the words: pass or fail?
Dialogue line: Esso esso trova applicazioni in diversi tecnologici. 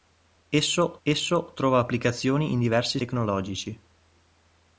pass